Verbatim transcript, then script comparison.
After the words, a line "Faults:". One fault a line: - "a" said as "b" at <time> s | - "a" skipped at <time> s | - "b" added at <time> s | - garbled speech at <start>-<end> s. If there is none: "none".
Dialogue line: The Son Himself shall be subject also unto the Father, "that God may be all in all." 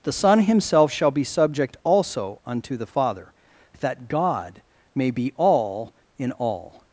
The Son Himself shall be subject also unto the Father, "that God may be all in all."
Faults:
none